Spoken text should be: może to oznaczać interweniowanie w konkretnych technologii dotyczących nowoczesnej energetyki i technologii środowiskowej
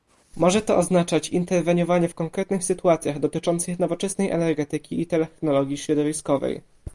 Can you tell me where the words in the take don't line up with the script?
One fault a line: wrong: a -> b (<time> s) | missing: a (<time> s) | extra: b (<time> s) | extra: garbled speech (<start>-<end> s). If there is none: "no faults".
wrong: technologii -> sytuacjach (2.6 s)